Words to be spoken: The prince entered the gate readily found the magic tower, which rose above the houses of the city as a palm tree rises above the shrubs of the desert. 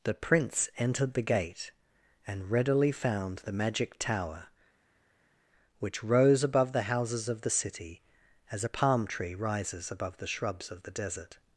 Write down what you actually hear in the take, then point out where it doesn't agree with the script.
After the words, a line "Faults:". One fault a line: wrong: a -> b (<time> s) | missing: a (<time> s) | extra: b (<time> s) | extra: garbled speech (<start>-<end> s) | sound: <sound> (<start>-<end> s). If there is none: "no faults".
The prince entered the gate and readily found the magic tower, which rose above the houses of the city as a palm tree rises above the shrubs of the desert.
Faults:
extra: and (2.2 s)